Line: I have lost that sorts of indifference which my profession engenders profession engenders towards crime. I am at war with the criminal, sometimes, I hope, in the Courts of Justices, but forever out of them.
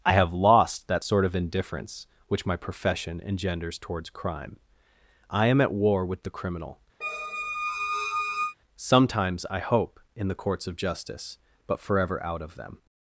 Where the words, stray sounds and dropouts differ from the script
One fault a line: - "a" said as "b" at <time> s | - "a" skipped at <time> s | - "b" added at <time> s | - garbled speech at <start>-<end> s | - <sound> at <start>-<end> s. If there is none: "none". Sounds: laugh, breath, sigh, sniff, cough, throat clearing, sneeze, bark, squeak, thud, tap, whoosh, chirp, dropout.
- "sorts" said as "sort" at 1.0 s
- "profession engenders" skipped at 3.8 s
- squeak at 7.0-8.6 s
- "Justices" said as "Justice" at 10.7 s